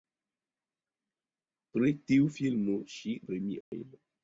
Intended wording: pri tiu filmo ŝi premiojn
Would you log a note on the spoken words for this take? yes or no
no